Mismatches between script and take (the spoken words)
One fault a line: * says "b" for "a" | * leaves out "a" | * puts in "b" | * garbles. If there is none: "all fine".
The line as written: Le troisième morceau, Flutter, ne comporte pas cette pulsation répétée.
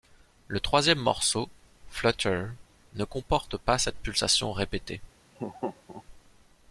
all fine